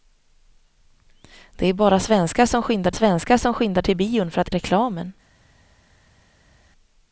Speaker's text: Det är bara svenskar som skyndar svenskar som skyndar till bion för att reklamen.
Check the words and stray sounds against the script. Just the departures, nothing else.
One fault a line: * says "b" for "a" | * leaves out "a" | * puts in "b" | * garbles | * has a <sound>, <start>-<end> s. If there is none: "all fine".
all fine